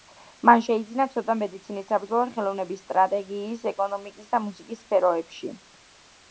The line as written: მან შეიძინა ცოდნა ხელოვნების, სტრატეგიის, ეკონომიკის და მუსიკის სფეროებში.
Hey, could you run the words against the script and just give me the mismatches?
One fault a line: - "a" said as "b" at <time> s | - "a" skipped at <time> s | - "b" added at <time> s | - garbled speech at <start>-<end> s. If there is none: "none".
- "მედიცინის საბრძოლო" added at 1.4 s